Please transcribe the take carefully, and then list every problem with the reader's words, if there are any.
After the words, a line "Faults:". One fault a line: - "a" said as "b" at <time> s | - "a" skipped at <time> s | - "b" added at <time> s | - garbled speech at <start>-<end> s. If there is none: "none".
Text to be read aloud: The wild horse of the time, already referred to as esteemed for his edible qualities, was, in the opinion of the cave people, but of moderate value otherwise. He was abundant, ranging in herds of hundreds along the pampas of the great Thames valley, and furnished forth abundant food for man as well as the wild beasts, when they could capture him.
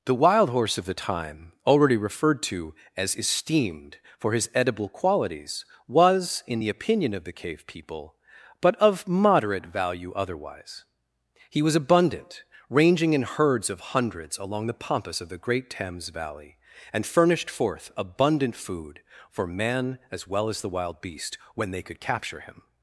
The wild horse of the time, already referred to as esteemed for his edible qualities, was, in the opinion of the cave people, but of moderate value otherwise. He was abundant, ranging in herds of hundreds along the pampas of the great Thames valley, and furnished forth abundant food for man as well as the wild beast, when they could capture him.
Faults:
- "beasts" said as "beast" at 21.0 s